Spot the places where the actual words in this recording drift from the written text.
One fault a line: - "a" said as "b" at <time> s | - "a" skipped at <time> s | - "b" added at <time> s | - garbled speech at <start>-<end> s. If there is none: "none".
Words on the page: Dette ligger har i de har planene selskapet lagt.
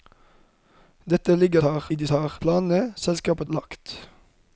none